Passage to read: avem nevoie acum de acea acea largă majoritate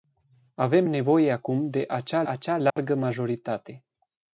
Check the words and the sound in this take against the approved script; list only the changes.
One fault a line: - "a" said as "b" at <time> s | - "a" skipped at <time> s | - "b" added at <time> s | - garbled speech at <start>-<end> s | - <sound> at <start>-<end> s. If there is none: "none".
- dropout at 2.7-2.8 s